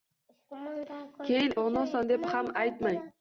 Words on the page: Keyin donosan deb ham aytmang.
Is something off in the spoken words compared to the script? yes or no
no